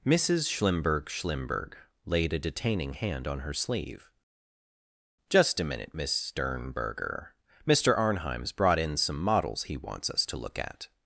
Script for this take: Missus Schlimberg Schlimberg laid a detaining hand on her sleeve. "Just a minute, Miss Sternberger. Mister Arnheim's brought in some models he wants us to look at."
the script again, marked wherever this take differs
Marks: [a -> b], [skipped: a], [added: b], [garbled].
Missus Schlimberg Schlimberg laid a detaining hand on her sleeve. "Just a minute, Miss Sternberger. Mister Arnheim's brought in some models he wants us to look at."